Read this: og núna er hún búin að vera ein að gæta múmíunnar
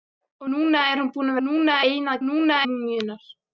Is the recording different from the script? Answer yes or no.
yes